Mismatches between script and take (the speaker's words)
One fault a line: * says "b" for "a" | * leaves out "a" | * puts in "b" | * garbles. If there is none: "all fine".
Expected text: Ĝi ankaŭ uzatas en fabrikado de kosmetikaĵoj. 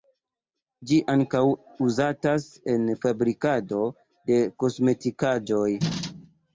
all fine